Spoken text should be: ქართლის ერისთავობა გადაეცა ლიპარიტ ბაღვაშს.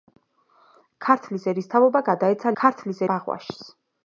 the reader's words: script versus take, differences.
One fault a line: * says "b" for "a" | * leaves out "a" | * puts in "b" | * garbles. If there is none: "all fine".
* says "ქართლის" for "ლიპარიტ"